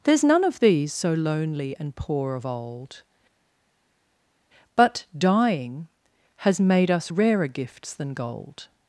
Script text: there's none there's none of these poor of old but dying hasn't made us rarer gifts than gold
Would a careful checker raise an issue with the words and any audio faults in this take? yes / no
yes